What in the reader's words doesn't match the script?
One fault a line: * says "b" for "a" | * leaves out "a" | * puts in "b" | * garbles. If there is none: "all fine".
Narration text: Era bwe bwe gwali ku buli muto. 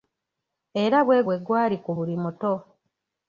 all fine